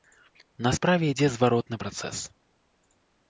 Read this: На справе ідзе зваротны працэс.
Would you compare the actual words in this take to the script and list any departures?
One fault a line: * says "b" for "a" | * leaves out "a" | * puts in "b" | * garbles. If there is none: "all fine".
all fine